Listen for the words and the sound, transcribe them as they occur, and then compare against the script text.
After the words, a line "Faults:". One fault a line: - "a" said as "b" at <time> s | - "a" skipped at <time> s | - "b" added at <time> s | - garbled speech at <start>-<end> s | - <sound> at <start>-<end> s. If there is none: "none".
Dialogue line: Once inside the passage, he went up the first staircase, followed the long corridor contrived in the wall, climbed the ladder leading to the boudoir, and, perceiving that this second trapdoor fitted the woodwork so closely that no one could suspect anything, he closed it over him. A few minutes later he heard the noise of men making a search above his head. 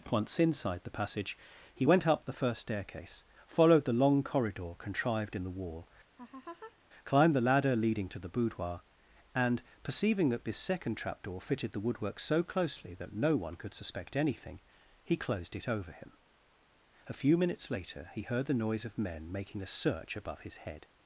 Once inside the passage, he went up the first staircase, followed the long corridor contrived in the wall, climbed the ladder leading to the boudoir, and, perceiving that this second trapdoor fitted the woodwork so closely that no one could suspect anything, he closed it over him. A few minutes later he heard the noise of men making a search above his head.
Faults:
- laugh at 6.2-6.8 s